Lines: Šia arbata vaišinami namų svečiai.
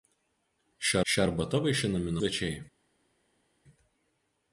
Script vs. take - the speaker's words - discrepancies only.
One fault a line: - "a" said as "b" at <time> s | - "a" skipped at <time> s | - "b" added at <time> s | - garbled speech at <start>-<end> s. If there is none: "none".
- "šia" added at 1.1 s
- "namų" skipped at 2.2 s